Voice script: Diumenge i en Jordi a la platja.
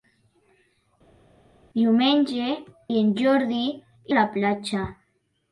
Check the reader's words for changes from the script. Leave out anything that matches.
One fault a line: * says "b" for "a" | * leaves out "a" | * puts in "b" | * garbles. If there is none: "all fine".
all fine